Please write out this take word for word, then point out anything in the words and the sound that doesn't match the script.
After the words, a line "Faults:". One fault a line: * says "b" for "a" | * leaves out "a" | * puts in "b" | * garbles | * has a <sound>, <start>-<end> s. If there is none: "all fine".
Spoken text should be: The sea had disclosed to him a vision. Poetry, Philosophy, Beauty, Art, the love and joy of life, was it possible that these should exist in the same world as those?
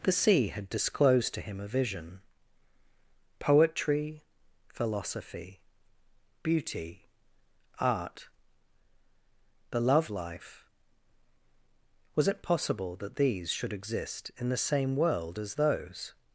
The sea had disclosed to him a vision. Poetry, Philosophy, Beauty, Art, the love life, was it possible that these should exist in the same world as those?
Faults:
* leaves out "and joy of"